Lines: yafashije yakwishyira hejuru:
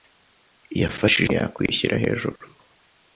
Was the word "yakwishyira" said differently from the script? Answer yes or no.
no